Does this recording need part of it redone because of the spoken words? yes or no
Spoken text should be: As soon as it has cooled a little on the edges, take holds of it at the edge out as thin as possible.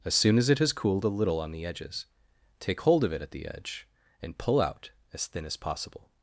yes